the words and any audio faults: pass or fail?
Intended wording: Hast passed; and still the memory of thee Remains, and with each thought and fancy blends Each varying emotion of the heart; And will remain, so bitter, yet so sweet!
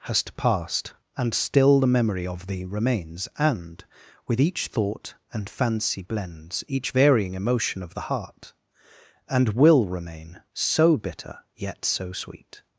pass